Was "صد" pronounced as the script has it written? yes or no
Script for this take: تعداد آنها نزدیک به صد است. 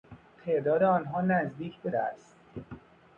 no